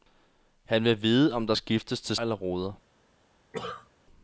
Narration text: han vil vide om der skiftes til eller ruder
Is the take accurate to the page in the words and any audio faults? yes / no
no